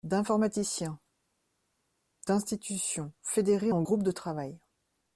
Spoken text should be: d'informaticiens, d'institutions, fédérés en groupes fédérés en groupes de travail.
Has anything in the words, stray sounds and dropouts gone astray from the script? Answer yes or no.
yes